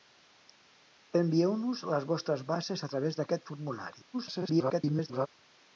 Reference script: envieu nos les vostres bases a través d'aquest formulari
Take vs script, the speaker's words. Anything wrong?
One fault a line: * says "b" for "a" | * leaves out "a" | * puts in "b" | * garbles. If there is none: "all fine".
* garbles